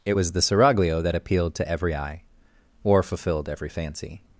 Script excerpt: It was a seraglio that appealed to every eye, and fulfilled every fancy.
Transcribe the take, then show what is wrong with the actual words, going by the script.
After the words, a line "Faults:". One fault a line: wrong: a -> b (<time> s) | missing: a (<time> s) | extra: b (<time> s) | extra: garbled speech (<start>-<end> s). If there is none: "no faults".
It was the seraglio that appealed to every eye, or fulfilled every fancy.
Faults:
wrong: a -> the (0.3 s)
wrong: and -> or (2.8 s)